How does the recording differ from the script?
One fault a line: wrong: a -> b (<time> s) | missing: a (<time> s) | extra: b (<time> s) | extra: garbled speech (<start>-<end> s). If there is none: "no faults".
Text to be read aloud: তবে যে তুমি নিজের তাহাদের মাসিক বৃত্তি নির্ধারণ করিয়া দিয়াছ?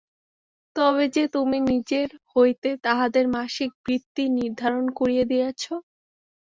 extra: হইতে (2.3 s)